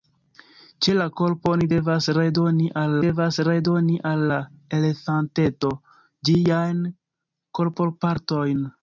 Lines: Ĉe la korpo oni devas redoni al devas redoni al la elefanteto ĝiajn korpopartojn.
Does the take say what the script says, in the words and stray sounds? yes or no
yes